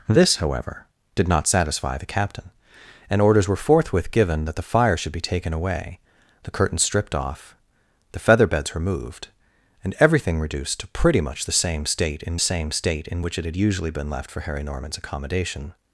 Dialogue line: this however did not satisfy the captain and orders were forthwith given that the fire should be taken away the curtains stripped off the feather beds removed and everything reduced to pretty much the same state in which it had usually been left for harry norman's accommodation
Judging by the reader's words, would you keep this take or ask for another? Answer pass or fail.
fail